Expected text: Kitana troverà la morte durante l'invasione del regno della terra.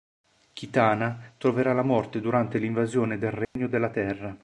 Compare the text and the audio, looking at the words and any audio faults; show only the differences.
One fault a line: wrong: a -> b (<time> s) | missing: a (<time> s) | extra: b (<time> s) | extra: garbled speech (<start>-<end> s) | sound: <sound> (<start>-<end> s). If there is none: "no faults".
sound: dropout (3.4-3.6 s)